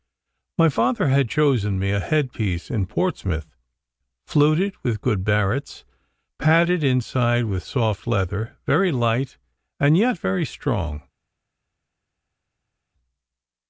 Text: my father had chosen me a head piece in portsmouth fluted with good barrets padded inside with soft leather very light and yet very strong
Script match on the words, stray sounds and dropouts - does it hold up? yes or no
yes